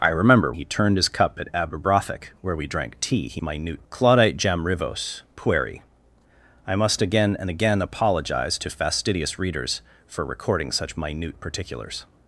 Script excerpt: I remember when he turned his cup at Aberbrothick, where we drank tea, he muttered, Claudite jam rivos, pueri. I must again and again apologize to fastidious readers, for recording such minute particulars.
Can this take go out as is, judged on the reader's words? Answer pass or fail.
fail